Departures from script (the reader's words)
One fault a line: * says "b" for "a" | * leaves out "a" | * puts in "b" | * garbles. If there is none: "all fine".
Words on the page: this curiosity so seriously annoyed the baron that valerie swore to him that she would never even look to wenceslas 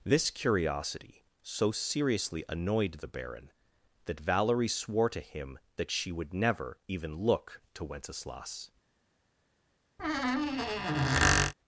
all fine